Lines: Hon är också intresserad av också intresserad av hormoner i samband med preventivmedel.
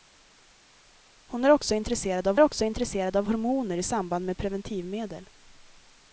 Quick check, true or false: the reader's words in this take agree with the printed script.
true